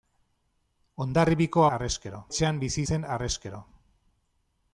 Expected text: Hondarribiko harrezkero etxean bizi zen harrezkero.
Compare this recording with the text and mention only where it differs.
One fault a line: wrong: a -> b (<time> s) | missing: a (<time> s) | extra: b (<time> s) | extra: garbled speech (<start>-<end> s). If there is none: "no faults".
no faults